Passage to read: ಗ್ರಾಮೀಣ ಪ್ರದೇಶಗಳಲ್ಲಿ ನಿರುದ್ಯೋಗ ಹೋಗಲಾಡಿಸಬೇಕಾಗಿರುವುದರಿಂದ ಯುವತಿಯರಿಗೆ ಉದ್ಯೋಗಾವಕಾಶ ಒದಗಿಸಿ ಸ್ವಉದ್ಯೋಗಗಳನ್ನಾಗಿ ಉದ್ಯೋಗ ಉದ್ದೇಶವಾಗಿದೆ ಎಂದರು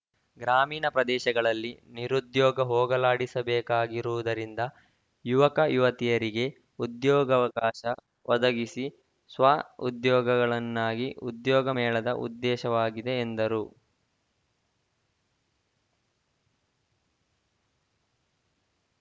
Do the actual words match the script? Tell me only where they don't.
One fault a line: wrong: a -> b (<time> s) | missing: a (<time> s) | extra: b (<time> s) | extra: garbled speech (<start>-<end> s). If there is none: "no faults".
extra: ಯುವಕ (5.2 s)
extra: ಮೇಳದ (11.8 s)